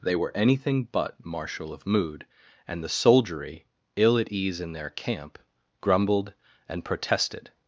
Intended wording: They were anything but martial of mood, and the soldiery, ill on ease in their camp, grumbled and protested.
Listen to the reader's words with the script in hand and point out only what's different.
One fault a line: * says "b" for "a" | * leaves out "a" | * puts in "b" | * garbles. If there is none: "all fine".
* says "at" for "on"